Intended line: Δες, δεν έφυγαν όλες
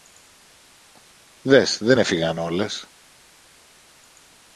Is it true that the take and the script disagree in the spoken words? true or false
false